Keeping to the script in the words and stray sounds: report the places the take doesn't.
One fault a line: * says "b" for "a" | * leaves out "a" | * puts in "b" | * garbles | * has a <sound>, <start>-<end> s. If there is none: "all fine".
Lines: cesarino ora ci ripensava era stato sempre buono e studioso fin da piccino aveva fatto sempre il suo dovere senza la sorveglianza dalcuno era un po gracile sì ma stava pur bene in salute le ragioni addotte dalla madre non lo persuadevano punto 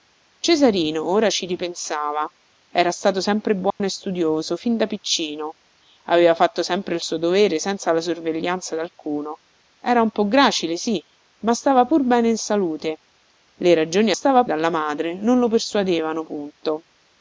* has a dropout, 3.7-3.8 s
* says "stava" for "addotte"